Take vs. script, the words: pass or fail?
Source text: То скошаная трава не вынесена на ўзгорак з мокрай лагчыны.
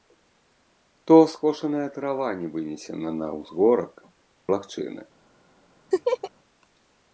fail